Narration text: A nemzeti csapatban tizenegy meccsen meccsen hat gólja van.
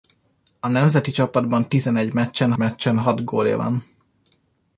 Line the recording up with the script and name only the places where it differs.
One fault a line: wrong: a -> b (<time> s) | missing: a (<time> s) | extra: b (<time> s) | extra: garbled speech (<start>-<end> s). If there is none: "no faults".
no faults